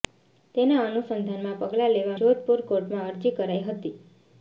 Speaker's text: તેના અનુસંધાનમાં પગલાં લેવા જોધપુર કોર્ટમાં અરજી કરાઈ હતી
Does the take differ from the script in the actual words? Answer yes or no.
no